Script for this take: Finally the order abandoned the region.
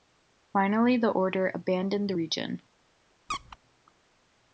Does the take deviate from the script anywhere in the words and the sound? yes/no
yes